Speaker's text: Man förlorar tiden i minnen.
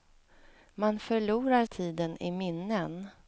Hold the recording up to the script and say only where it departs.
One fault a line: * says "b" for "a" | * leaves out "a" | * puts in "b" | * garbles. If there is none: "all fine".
all fine